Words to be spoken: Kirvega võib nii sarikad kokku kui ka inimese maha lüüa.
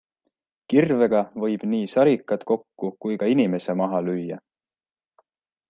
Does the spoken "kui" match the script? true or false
true